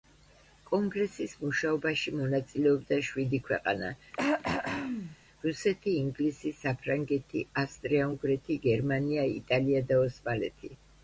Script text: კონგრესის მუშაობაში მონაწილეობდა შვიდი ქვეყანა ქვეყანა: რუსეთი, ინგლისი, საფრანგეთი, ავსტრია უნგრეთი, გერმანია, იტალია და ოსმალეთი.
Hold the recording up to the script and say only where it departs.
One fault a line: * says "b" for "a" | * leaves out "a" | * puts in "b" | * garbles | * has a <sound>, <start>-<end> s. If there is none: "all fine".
* leaves out "ქვეყანა"
* has a throat clearing, 4.1-5.2 s